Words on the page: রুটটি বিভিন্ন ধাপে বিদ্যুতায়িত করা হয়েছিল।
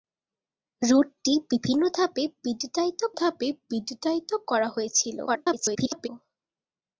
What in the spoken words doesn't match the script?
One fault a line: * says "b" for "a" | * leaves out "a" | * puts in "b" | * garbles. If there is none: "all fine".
* puts in "ধাপে বিদ্যুতায়িত"
* garbles